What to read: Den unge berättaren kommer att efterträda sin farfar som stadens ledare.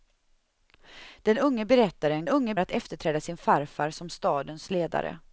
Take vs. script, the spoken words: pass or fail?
fail